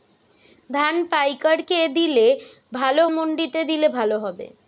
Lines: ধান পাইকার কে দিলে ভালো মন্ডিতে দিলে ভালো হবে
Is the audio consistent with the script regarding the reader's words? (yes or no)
yes